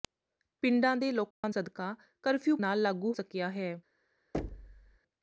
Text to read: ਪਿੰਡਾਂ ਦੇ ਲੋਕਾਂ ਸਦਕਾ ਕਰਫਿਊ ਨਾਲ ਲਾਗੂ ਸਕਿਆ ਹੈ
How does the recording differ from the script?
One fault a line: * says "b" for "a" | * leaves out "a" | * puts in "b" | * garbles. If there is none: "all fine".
all fine